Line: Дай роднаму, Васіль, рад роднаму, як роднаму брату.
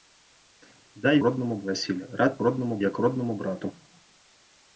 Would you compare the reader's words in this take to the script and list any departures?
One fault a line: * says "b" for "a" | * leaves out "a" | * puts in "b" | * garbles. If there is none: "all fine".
all fine